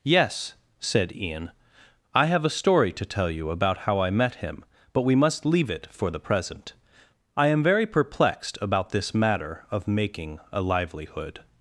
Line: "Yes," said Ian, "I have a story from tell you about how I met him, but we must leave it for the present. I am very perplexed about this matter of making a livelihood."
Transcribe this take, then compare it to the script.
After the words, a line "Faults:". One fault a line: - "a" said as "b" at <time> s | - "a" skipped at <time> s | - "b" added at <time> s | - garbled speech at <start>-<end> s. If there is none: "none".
"Yes," said Ian, "I have a story to tell you about how I met him, but we must leave it for the present. I am very perplexed about this matter of making a livelihood."
Faults:
- "from" said as "to" at 2.9 s